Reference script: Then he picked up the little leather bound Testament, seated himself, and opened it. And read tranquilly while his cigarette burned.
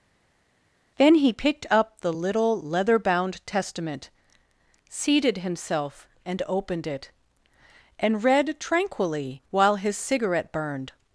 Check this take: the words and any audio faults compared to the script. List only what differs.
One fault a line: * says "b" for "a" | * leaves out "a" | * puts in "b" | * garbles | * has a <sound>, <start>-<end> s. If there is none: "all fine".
all fine